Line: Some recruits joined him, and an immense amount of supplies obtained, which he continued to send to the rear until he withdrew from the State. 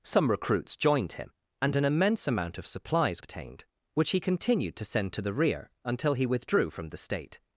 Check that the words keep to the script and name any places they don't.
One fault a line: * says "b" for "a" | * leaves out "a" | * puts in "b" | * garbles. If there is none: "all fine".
all fine